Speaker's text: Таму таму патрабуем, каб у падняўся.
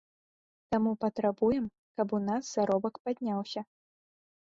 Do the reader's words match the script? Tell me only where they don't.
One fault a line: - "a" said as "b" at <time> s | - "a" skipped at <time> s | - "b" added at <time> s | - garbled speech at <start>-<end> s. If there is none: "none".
- "таму" skipped at 0.9 s
- "нас заробак" added at 2.3 s